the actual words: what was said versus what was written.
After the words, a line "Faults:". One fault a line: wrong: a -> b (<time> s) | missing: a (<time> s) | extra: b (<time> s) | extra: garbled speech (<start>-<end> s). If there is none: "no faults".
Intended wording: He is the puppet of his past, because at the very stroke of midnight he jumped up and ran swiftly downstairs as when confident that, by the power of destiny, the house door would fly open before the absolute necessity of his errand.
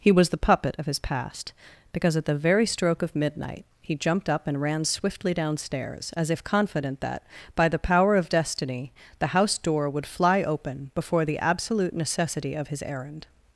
He was the puppet of his past, because at the very stroke of midnight he jumped up and ran swiftly downstairs as if confident that, by the power of destiny, the house door would fly open before the absolute necessity of his errand.
Faults:
wrong: is -> was (0.1 s)
wrong: when -> if (6.3 s)